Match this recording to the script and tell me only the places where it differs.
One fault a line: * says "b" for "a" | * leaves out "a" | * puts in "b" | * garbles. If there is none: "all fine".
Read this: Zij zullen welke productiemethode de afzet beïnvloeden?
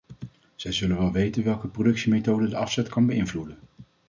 * puts in "wel weten"
* puts in "kan"